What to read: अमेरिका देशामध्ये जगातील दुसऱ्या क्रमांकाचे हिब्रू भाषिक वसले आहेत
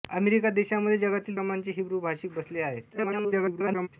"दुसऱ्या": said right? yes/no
no